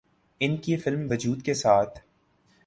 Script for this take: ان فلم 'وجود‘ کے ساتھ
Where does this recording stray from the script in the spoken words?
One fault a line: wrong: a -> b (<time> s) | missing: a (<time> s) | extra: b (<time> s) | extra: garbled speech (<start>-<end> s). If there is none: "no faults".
extra: کی (0.6 s)